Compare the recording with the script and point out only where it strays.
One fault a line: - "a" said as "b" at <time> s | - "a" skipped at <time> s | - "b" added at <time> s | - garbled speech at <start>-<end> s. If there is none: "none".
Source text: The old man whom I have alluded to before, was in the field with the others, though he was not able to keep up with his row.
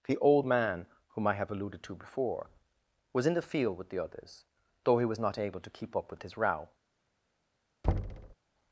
none